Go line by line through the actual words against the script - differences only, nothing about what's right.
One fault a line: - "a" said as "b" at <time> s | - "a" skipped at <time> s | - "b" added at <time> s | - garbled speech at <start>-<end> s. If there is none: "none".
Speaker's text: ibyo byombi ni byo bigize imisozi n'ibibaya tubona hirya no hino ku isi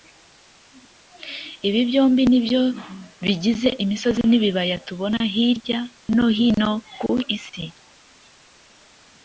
- "ibyo" said as "ibi" at 1.7 s